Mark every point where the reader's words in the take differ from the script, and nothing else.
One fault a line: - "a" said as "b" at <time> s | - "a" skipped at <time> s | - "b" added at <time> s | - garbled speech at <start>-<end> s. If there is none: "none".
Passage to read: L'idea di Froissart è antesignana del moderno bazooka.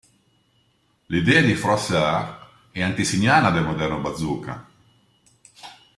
none